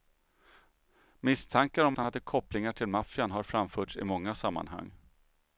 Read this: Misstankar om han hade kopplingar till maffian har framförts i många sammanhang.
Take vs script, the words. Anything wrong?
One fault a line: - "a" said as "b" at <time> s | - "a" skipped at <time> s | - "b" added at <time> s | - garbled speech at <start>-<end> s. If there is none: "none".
none